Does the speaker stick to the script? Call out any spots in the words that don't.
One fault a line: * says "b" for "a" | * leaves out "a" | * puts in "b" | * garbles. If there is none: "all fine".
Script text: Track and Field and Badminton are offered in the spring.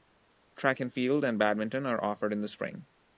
all fine